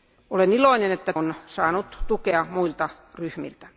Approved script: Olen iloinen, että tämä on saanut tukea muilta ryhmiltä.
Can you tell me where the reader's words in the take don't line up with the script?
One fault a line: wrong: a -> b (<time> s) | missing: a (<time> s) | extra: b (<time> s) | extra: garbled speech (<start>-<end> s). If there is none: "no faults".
missing: tämä (1.1 s)